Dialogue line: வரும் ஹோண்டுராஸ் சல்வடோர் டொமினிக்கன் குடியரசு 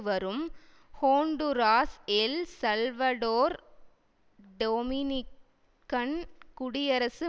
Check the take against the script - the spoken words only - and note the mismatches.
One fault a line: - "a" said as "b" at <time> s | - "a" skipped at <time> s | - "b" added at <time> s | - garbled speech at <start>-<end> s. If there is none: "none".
- "எல்" added at 2.1 s